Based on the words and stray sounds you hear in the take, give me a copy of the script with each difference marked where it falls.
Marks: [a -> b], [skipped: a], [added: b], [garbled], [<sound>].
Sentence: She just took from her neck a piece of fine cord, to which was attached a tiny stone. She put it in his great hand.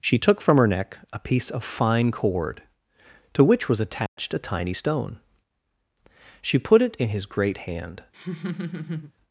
She [skipped: just] took from her neck a piece of fine cord, to which was attached [dropout] a tiny stone. She put it in his great hand. [laugh]